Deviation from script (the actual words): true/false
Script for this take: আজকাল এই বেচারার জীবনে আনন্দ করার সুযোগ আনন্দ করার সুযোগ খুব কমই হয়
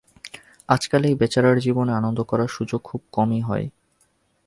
true